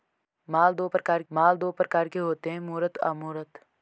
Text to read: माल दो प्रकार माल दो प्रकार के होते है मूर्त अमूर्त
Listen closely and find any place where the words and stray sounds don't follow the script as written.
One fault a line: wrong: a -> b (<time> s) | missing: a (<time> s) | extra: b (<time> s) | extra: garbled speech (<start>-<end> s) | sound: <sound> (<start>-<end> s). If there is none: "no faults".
no faults